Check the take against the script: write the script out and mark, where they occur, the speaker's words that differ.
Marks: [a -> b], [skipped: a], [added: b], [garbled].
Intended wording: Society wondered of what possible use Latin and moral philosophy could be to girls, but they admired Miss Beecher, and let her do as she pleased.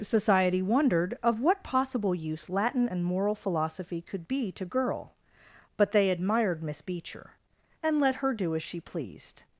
Society wondered of what possible use Latin and moral philosophy could be to [girls, -> girl] but they admired Miss Beecher, and let her do as she pleased.